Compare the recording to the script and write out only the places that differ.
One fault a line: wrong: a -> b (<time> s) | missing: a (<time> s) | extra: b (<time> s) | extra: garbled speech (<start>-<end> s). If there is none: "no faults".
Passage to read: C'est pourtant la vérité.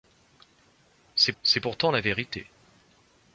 extra: c'est (1.4 s)